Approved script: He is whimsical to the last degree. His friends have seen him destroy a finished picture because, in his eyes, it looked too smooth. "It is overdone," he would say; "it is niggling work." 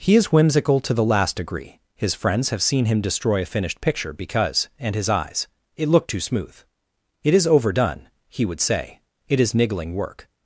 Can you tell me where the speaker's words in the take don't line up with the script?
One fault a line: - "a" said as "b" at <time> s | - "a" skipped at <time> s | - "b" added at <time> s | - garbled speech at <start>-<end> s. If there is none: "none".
- "in" said as "and" at 4.8 s